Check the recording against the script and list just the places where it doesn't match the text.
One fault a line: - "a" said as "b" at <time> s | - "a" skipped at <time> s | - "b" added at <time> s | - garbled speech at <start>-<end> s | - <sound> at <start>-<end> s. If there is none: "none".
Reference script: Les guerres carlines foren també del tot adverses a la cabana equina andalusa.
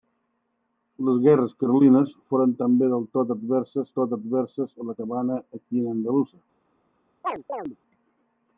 - "tot adverses" added at 4.0 s
- chirp at 7.2-7.8 s